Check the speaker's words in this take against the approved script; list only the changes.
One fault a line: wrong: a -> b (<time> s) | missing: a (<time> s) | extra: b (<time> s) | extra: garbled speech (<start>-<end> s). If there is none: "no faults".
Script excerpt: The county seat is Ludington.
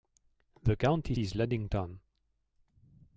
missing: seat (1.1 s)